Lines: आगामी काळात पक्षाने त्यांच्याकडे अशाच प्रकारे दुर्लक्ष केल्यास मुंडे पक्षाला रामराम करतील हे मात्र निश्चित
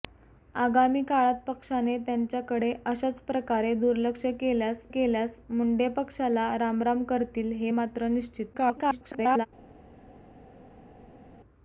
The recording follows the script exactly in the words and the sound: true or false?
false